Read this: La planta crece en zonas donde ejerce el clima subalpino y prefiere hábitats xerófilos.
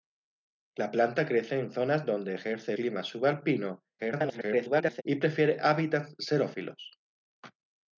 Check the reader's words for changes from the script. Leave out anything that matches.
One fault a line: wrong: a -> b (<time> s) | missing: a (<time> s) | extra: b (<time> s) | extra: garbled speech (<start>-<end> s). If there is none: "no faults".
missing: el (2.7 s)
extra: garbled speech (4.0-5.0 s)